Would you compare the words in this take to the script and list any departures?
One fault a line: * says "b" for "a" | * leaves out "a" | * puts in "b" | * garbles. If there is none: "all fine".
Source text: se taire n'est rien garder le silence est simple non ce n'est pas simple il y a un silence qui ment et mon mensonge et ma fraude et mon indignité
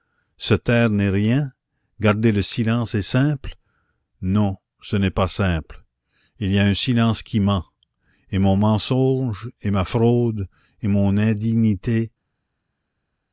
all fine